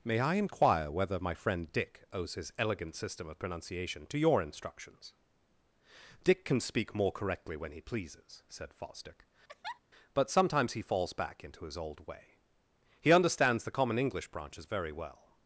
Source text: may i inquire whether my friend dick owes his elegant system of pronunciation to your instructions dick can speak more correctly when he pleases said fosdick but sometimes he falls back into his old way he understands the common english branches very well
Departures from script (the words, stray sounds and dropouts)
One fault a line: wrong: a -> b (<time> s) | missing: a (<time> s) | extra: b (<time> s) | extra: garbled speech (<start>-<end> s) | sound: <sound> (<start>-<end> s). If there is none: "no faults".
sound: laugh (9.5-9.8 s)